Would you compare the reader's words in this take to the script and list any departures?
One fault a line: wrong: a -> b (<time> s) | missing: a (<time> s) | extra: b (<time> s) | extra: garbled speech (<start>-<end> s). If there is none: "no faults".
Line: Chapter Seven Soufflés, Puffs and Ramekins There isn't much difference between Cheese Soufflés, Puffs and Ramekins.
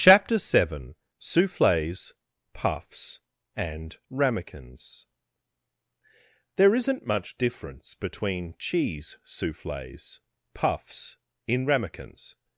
wrong: and -> in (11.5 s)